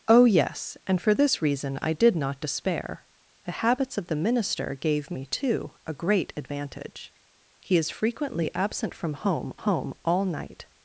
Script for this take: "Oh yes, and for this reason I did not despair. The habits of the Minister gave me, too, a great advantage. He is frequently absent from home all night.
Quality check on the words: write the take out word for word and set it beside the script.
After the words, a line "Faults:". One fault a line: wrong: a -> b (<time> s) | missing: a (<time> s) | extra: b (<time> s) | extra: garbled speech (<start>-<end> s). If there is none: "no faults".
"Oh yes, and for this reason I did not despair. The habits of the Minister gave me, too, a great advantage. He is frequently absent from home home all night.
Faults:
extra: home (9.5 s)